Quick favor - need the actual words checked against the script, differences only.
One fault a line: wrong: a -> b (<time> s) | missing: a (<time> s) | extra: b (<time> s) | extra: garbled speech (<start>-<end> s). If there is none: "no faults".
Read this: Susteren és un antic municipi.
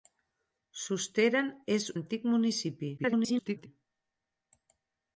missing: un (1.9 s)
extra: garbled speech (3.0-3.7 s)